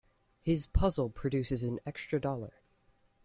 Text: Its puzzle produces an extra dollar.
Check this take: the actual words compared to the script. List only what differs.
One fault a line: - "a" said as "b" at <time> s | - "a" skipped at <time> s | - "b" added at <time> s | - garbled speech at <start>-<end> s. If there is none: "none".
- "Its" said as "His" at 0.4 s